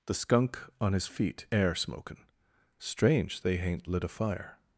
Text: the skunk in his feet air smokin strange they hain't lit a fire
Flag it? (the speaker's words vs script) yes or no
yes